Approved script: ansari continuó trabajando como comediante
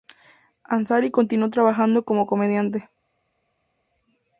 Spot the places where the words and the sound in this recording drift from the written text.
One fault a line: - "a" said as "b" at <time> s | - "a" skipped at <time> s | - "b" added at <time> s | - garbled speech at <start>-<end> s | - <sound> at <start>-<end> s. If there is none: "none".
none